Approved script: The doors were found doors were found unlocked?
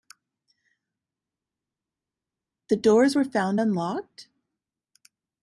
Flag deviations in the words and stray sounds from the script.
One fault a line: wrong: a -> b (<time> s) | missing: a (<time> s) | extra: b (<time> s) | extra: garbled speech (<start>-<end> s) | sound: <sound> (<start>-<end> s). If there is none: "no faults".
missing: doors were found (3.6 s)